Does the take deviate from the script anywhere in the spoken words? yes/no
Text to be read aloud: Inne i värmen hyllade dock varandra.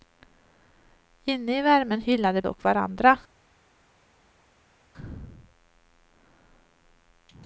no